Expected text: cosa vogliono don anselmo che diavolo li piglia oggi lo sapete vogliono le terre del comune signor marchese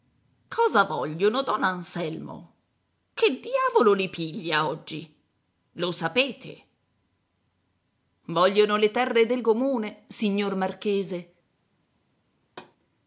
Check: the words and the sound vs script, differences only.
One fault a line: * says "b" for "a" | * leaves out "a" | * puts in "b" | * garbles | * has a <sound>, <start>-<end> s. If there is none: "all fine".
* has a thud, 12.4-12.8 s